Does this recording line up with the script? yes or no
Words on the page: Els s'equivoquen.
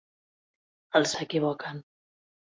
yes